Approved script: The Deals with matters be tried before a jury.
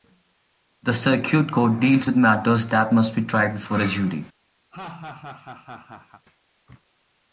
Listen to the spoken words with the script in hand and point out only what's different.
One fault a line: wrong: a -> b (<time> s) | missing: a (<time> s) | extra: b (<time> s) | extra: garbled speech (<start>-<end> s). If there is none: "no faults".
extra: Circuit Court (0.9 s)
extra: that must (2.7 s)